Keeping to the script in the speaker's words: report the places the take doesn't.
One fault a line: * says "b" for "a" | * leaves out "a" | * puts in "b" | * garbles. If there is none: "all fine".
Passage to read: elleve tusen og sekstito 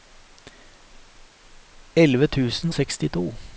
* leaves out "og"